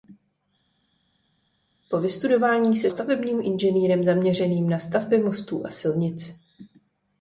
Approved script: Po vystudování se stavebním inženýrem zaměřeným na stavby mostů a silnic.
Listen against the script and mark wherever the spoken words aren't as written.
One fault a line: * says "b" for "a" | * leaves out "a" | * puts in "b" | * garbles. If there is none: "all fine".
all fine